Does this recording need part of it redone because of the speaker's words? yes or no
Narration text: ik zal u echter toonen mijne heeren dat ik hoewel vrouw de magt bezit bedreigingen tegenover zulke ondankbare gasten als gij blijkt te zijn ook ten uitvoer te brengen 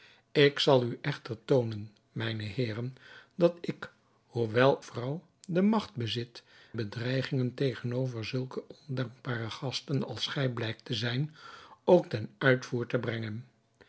no